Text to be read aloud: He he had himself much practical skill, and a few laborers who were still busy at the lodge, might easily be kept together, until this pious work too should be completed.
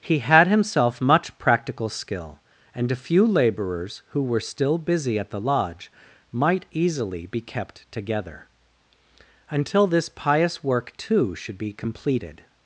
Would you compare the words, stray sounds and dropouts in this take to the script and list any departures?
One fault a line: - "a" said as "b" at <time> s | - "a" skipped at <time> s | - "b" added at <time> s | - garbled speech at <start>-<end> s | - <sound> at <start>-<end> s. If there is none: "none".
- "he" skipped at 0.2 s